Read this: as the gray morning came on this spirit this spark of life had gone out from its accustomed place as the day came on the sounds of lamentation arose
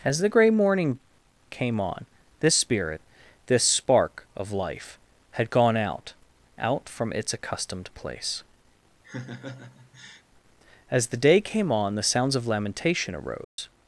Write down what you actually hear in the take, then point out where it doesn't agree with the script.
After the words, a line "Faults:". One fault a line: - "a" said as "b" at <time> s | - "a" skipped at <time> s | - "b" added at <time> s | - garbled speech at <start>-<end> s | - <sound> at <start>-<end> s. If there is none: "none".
as the gray morning came on this spirit this spark of life had gone out out from its accustomed place as the day came on the sounds of lamentation arose
Faults:
- "out" added at 6.6 s
- laugh at 9.0-10.2 s
- dropout at 13.4-13.6 s